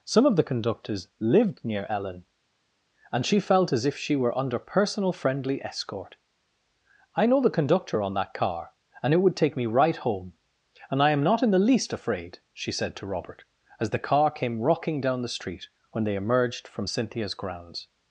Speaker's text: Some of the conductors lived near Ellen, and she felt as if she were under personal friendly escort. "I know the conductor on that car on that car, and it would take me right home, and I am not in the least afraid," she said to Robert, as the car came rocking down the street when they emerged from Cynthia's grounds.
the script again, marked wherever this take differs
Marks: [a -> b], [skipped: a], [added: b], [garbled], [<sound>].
Some of the conductors lived near Ellen, and she felt as if she were under personal friendly escort. "I know the conductor on that car [skipped: on that car,] and it would take me right home, and I am not in the least afraid," she said to Robert, as the car came rocking down the street when they emerged from Cynthia's grounds.